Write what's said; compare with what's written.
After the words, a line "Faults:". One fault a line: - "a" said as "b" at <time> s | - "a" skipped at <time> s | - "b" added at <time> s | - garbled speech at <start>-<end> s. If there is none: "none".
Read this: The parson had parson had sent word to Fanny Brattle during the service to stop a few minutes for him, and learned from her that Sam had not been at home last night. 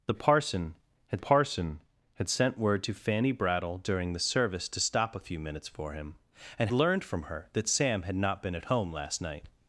The parson had parson had sent word to Fanny Brattle during the service to stop a few minutes for him, and learned from her that Sam had not been at home last night.
Faults:
none